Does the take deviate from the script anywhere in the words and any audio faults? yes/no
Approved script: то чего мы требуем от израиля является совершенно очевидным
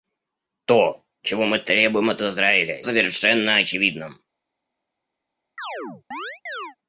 yes